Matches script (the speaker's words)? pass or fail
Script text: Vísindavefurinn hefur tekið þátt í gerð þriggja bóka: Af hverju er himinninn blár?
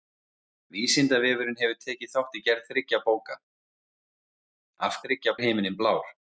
fail